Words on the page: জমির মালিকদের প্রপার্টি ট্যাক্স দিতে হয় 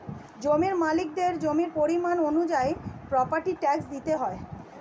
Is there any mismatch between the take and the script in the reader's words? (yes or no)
yes